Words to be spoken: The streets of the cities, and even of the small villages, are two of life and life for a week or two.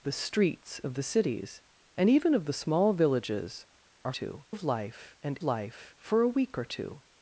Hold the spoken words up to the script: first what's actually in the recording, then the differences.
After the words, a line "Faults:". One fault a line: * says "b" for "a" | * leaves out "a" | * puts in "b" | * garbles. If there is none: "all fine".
The streets of the cities, and even of the small villages, are two of life and life for a week or two.
Faults:
all fine